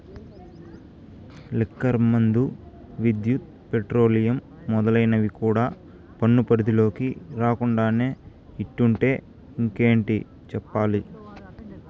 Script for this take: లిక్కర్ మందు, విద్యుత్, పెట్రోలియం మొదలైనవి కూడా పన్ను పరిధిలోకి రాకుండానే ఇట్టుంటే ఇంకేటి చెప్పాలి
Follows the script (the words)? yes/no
yes